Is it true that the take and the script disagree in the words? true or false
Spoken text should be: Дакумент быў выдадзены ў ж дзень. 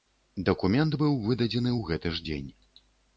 true